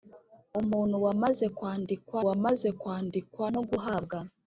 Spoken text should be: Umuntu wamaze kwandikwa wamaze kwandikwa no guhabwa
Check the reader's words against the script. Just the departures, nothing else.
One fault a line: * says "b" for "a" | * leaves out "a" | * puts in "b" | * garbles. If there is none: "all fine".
all fine